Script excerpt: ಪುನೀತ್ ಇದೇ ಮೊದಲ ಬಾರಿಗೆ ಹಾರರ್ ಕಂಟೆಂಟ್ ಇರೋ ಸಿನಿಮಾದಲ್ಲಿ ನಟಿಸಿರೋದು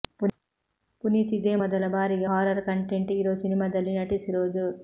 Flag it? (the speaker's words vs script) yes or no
no